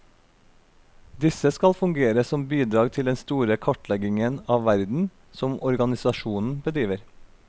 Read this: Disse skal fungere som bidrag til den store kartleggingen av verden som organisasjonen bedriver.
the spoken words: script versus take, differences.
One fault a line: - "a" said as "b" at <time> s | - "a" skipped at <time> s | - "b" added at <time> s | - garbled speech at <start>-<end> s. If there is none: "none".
none